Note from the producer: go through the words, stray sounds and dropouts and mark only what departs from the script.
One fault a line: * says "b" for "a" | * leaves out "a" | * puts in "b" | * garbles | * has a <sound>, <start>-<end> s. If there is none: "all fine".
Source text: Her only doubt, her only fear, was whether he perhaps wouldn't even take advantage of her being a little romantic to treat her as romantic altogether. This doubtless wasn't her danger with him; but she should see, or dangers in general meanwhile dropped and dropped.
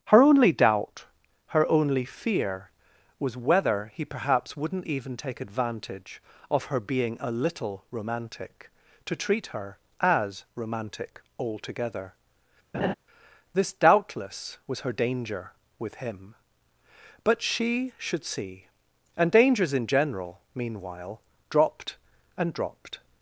* has a laugh, 12.7-12.9 s
* says "was" for "wasn't"
* says "and" for "or"